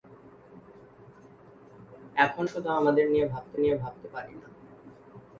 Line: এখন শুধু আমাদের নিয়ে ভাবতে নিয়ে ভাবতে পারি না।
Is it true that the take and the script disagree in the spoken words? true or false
false